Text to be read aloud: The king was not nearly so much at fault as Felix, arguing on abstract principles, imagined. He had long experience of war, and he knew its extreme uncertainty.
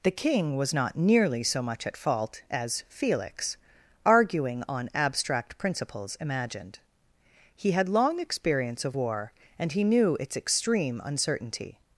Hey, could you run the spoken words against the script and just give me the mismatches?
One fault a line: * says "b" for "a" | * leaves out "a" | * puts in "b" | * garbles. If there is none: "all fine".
all fine